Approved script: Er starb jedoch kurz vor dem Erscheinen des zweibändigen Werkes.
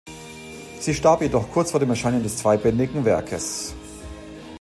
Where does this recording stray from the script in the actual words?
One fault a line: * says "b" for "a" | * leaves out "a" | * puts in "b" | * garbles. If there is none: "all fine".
* says "Sie" for "Er"